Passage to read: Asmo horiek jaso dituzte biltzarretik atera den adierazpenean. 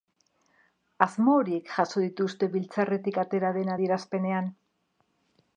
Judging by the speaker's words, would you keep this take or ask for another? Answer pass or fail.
pass